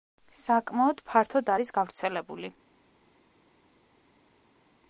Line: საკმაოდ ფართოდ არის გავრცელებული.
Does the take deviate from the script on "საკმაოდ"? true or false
false